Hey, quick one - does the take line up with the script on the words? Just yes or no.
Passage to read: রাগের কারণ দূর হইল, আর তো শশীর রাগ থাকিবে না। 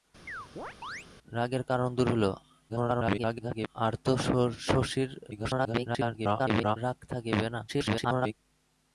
no